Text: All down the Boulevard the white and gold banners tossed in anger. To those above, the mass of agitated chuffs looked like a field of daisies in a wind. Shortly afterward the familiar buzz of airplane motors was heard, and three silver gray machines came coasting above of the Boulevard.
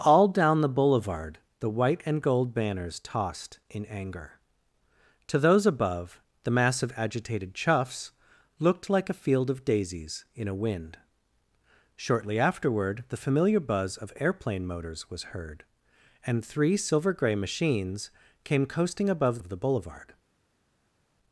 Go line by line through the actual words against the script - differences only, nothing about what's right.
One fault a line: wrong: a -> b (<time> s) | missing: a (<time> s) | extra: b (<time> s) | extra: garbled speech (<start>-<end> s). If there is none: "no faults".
no faults